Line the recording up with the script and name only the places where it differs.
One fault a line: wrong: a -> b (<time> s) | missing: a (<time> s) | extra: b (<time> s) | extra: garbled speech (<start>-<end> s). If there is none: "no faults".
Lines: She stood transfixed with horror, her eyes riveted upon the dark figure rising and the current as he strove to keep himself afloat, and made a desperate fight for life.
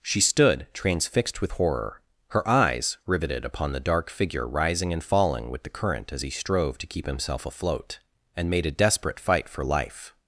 extra: falling with (5.0 s)